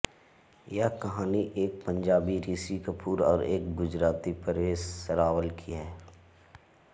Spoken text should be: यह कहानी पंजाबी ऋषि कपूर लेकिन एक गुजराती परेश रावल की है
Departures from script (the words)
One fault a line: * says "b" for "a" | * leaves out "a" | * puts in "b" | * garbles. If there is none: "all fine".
* puts in "एक"
* says "और" for "लेकिन"